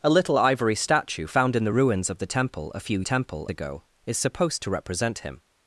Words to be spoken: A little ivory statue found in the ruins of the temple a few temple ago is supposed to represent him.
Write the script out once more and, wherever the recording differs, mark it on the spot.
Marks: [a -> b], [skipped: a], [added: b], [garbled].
A little ivory statue found in the ruins of the temple a few temple ago is supposed to represent him.